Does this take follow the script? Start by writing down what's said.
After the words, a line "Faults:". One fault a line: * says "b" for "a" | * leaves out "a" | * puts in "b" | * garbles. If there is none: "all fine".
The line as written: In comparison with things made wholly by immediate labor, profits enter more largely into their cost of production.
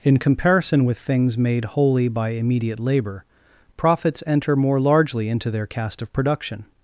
In comparison with things made wholly by immediate labor, profits enter more largely into their cast of production.
Faults:
* says "cast" for "cost"